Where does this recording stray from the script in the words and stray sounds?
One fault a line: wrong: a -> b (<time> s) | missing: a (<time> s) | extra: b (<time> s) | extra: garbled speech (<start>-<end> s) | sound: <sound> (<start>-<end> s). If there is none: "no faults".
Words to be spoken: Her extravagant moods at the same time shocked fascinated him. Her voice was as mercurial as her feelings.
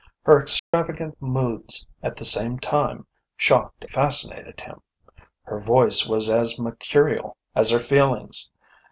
sound: dropout (0.6-0.7 s)